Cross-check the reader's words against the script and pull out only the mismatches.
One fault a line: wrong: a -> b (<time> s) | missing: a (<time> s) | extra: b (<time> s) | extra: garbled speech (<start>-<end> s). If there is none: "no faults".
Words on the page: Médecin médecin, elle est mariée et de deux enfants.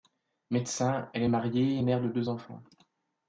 missing: médecin (1.1 s)
extra: mère (1.8 s)